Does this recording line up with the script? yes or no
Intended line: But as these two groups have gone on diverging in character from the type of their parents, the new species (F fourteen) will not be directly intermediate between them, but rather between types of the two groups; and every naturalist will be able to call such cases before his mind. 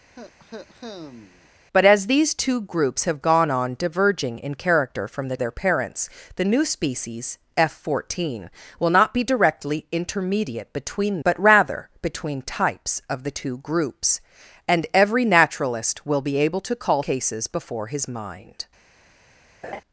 no